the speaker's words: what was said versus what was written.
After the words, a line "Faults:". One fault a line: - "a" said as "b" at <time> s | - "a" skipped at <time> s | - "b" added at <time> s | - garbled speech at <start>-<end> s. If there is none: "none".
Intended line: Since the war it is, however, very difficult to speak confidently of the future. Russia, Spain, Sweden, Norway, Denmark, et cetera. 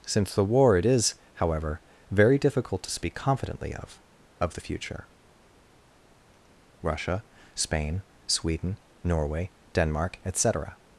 Since the war it is, however, very difficult to speak confidently of of the future. Russia, Spain, Sweden, Norway, Denmark, et cetera.
Faults:
- "of" added at 4.4 s